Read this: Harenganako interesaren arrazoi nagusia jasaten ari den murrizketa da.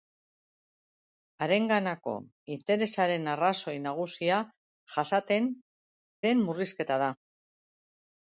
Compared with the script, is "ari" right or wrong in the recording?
wrong